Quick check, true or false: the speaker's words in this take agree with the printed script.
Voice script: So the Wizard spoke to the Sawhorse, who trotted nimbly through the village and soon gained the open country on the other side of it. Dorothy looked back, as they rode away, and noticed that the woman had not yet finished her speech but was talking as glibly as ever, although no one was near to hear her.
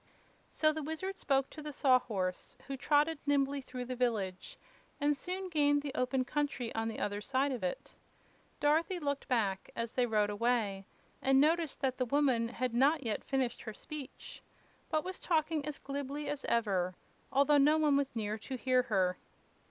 true